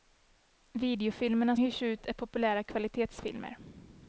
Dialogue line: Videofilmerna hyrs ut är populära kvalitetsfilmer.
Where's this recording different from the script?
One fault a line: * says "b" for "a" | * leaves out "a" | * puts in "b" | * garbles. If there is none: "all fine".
all fine